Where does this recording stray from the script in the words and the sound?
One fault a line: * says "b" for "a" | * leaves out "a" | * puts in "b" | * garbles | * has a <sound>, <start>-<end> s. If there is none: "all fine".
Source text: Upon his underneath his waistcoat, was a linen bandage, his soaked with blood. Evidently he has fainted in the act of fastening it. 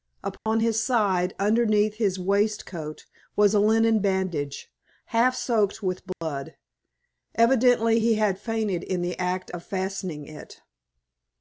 * has a dropout, 0.4-0.5 s
* puts in "side"
* says "half" for "his"
* has a dropout, 6.1-6.2 s
* says "had" for "has"